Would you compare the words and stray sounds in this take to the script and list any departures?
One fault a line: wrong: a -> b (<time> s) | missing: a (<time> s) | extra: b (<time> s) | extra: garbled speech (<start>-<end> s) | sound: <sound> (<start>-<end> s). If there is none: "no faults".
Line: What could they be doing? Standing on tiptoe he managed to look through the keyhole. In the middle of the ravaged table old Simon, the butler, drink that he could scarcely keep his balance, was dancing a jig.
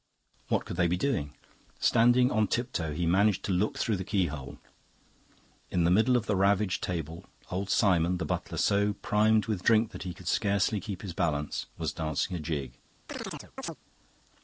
extra: so primed with (8.6 s)
sound: chirp (13.1-13.8 s)